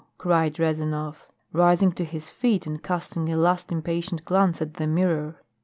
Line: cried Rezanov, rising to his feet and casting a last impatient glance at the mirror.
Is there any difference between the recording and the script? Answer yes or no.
no